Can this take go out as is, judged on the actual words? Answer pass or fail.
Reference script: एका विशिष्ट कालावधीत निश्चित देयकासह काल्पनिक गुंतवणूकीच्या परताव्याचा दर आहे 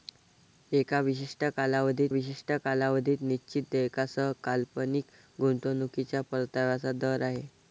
fail